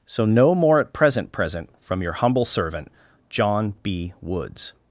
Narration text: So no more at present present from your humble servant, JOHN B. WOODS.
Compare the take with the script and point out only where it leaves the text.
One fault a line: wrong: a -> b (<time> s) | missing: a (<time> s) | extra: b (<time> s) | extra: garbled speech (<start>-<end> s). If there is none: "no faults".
no faults